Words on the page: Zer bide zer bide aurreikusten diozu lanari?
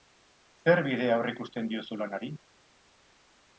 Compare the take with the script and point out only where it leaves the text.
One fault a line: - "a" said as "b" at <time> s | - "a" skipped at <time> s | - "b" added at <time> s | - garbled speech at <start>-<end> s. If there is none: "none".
- "zer bide" skipped at 1.1 s